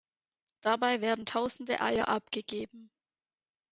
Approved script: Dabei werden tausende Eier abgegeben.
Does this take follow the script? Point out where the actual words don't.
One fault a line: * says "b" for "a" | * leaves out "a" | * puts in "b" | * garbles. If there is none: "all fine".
all fine